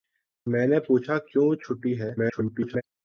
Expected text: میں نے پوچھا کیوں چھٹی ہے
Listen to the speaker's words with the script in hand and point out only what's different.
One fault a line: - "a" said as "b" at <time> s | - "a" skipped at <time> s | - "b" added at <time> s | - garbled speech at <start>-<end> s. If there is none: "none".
- garbled speech at 2.2-2.8 s